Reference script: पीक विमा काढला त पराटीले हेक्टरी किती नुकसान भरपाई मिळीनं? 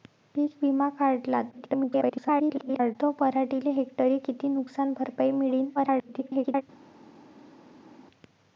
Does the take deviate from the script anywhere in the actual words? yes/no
yes